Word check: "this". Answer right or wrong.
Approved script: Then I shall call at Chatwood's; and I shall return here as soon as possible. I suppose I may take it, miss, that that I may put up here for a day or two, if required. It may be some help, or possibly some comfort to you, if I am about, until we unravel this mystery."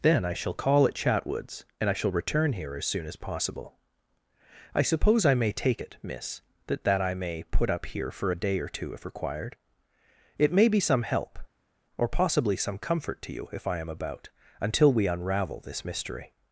right